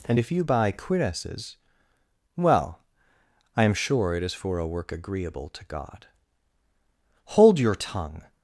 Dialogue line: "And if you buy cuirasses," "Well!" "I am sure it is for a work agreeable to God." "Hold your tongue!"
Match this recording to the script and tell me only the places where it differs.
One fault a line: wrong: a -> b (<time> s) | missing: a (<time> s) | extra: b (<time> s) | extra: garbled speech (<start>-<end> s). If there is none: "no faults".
no faults